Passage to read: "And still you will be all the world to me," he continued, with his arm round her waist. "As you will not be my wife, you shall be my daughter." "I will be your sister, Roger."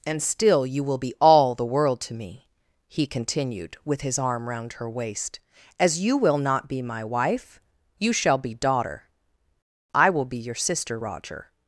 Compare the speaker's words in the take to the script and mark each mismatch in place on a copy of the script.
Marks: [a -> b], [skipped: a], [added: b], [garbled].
"And still you will be all the world to me," he continued, with his arm round her waist. "As you will not be my wife, you shall be [skipped: my] daughter." "I will be your sister, Roger."